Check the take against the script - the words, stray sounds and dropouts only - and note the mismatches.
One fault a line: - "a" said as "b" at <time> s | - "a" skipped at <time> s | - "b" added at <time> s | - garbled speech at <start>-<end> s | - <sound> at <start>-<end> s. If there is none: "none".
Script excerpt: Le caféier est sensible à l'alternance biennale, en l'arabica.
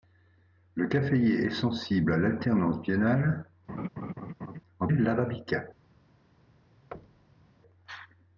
- laugh at 3.7-4.6 s
- thud at 6.9-7.5 s